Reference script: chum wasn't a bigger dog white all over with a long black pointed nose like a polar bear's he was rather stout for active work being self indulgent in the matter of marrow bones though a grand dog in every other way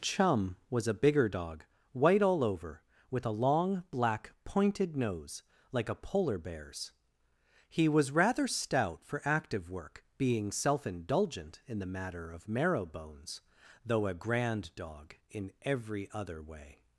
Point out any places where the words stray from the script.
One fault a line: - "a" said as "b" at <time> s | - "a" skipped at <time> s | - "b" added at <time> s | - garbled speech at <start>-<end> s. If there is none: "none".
- "wasn't" said as "was" at 0.7 s